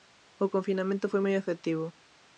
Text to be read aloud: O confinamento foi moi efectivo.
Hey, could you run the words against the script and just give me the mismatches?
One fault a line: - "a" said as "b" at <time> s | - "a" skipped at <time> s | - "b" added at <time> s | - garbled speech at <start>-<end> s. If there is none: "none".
none